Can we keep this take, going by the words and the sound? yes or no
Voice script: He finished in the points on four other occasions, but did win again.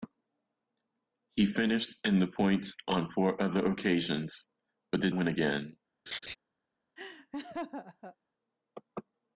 no